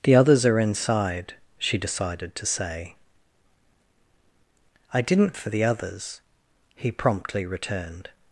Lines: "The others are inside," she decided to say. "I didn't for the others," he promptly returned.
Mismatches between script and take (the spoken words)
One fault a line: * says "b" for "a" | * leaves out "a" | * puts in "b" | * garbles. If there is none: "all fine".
all fine